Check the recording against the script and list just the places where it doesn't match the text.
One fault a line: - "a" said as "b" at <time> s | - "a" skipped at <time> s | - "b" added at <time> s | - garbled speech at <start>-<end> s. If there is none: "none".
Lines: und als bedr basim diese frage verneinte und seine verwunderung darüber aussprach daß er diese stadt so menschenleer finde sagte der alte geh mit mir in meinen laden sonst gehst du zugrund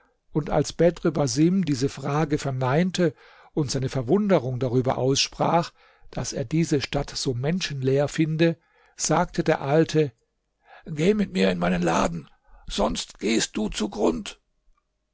none